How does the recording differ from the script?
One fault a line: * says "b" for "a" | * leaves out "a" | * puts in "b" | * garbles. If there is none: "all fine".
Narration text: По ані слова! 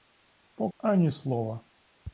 all fine